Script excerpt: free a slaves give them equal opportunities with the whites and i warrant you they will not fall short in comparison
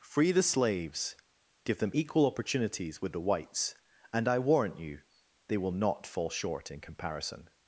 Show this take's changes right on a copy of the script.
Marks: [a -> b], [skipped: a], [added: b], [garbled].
free [a -> the] slaves give them equal opportunities with the whites and i warrant you they will not fall short in comparison